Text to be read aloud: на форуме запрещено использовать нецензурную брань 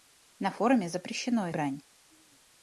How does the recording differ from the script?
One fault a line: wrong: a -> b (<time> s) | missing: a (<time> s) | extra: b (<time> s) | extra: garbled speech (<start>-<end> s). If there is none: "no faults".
missing: использовать нецензурную (1.5 s)